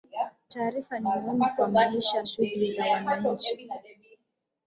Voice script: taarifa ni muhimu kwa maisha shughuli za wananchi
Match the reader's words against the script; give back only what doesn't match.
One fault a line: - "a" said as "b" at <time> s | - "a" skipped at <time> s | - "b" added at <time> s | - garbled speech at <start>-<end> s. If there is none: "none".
none